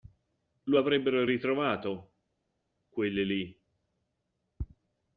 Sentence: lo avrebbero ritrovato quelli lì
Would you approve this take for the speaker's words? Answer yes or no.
yes